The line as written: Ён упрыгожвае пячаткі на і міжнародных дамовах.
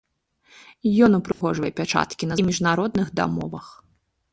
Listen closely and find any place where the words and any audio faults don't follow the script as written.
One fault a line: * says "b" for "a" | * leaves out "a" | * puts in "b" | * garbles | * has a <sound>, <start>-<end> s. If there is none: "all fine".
* has a dropout, 1.3-1.4 s